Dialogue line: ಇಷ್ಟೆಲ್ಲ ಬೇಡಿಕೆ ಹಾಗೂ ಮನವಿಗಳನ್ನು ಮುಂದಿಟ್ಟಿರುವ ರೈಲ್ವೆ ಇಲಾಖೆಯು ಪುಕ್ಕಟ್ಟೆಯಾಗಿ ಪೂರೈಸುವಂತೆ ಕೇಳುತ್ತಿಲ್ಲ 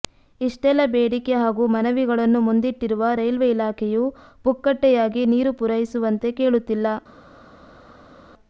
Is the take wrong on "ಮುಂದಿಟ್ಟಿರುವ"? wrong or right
right